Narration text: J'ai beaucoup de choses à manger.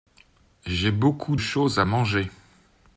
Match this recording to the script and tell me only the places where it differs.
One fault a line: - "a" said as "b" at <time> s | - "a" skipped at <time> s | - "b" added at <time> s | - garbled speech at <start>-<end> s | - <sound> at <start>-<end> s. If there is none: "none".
- "de" skipped at 1.4 s